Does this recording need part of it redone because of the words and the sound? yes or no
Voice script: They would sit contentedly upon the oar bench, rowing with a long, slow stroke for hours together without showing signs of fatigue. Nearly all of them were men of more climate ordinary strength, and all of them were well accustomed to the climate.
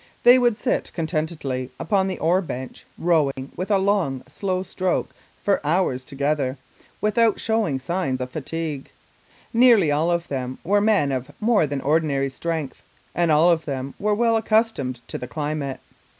yes